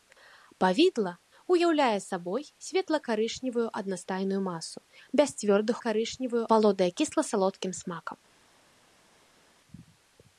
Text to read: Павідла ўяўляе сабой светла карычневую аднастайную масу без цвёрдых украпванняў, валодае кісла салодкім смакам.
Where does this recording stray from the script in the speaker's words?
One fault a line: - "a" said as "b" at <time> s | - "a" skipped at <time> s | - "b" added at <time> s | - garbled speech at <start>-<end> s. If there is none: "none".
- "украпванняў" said as "карычневую" at 5.8 s